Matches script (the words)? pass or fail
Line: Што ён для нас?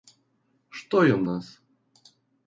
fail